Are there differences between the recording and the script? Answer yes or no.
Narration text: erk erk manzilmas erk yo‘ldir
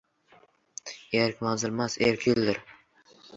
yes